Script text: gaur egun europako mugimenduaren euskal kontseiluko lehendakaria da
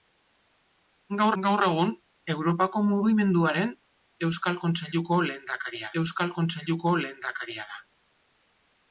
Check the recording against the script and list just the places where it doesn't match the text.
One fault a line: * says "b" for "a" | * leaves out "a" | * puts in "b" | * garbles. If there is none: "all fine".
* puts in "gaur"
* puts in "euskal kontseiluko lehendakaria"